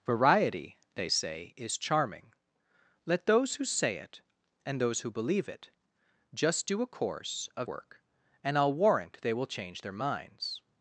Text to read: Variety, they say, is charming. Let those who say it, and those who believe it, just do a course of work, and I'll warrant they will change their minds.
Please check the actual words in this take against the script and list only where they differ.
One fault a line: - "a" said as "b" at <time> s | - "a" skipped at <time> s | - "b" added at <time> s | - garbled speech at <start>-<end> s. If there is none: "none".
none